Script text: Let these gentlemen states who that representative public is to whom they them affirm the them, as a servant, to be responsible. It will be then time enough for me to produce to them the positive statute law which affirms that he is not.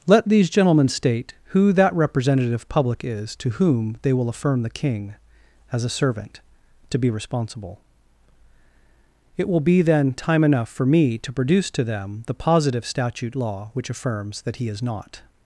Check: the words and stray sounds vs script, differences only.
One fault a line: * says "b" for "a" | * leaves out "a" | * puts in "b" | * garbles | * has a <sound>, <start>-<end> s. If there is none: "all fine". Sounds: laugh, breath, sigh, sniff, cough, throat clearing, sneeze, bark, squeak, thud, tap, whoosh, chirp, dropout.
* says "state" for "states"
* says "will" for "them"
* says "king" for "them"